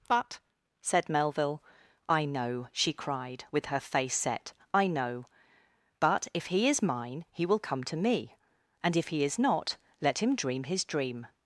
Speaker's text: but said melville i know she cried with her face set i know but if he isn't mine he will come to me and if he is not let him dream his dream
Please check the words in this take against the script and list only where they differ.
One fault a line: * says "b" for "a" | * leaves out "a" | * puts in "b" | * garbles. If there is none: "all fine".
* says "is" for "isn't"